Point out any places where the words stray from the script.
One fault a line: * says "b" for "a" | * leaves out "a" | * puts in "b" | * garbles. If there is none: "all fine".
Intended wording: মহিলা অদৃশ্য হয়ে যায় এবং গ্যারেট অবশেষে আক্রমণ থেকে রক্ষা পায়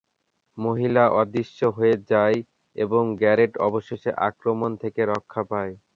all fine